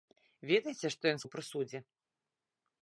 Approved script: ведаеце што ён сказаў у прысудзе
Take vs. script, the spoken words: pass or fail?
fail